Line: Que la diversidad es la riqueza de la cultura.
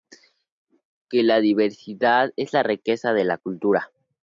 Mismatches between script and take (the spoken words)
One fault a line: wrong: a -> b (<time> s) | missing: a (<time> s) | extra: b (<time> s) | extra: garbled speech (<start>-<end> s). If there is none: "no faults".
no faults